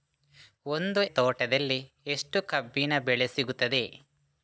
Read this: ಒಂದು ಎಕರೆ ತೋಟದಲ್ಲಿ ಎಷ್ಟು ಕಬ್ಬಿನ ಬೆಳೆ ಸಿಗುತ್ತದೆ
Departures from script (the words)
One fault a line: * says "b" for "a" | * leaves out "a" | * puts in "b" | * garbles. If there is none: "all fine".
* leaves out "ಎಕರೆ"